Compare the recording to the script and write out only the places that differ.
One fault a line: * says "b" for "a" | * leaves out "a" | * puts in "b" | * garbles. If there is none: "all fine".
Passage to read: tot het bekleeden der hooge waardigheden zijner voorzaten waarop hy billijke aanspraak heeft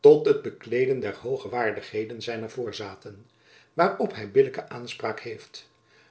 all fine